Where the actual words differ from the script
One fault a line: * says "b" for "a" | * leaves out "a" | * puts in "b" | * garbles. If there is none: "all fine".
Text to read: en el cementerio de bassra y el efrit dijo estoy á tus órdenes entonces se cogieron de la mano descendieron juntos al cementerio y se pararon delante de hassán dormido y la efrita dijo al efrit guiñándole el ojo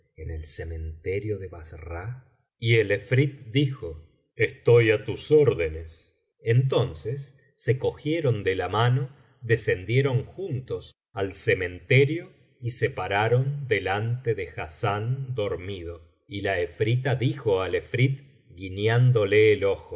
all fine